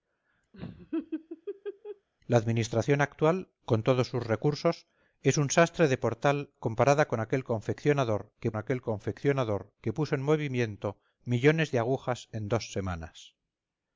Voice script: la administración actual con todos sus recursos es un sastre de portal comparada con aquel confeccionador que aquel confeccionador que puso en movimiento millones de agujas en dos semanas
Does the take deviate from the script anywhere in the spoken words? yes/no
no